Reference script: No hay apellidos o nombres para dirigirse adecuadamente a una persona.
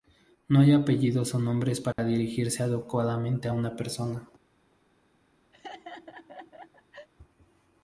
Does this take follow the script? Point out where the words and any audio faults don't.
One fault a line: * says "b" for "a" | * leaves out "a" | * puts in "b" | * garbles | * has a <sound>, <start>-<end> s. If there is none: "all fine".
* has a dropout, 1.9-2.0 s
* has a laugh, 5.5-7.1 s